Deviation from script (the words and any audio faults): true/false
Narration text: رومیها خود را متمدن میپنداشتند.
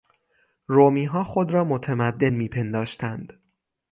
false